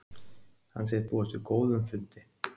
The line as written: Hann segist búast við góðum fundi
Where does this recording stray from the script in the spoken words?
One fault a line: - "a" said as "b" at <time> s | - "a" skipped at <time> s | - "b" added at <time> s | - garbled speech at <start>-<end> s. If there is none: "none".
none